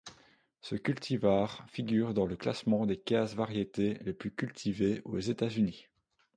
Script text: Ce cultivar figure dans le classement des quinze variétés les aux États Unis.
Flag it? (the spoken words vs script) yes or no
yes